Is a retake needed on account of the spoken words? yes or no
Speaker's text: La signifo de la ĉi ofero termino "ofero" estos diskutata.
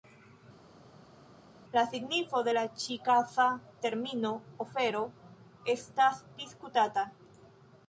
yes